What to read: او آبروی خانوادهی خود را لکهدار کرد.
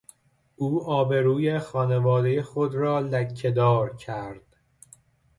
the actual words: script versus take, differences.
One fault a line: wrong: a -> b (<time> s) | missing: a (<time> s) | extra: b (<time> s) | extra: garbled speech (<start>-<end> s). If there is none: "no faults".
no faults